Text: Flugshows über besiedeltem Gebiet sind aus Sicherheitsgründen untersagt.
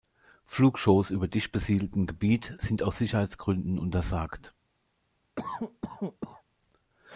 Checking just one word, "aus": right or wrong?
right